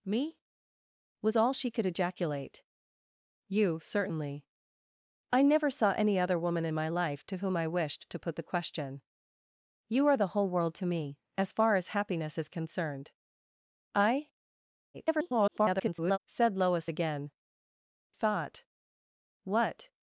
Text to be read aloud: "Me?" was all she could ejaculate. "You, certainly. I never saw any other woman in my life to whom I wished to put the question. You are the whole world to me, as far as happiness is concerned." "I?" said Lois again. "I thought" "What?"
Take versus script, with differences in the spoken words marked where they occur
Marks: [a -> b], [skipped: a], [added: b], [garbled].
"Me?" was all she could ejaculate. "You, certainly. I never saw any other woman in my life to whom I wished to put the question. You are the whole world to me, as far as happiness is concerned." "I?" [garbled] said Lois again. [skipped: "I] thought" "What?"